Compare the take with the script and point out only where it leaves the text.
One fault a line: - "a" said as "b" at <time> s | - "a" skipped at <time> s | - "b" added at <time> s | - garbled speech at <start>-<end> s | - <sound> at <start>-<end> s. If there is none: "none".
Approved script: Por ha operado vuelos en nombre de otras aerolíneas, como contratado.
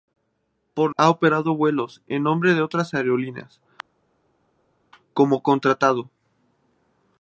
none